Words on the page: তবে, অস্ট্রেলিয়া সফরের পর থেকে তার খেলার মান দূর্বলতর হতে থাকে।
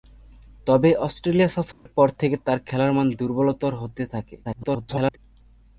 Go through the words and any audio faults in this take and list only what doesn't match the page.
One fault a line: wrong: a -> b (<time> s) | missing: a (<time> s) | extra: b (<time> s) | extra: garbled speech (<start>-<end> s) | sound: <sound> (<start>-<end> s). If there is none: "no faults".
sound: dropout (1.7-1.9 s)
extra: garbled speech (4.4-5.2 s)